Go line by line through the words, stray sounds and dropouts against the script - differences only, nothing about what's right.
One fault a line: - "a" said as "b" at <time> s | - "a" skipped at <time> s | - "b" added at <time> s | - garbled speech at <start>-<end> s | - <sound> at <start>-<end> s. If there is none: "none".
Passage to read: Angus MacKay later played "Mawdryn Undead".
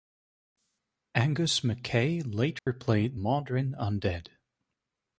- dropout at 2.6-2.7 s